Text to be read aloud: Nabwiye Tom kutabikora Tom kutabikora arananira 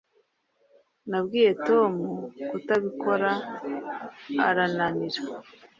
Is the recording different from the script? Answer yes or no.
yes